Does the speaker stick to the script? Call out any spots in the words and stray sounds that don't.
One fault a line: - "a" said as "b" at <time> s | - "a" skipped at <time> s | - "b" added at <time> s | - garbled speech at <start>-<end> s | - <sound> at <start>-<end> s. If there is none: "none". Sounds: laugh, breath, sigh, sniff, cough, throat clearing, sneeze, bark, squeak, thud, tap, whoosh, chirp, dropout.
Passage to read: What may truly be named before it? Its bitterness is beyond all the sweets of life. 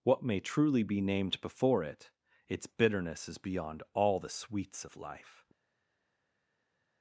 none